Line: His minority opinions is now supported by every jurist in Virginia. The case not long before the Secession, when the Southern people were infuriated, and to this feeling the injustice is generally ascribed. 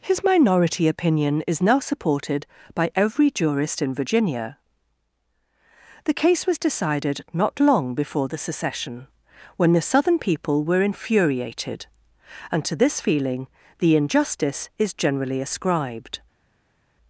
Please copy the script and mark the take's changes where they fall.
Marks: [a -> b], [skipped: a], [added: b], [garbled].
His minority [opinions -> opinion] is now supported by every jurist in Virginia. The case [added: was decided] not long before the Secession, when the Southern people were infuriated, and to this feeling the injustice is generally ascribed.